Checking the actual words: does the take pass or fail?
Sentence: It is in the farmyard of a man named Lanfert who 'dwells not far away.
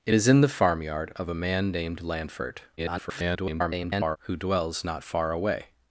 fail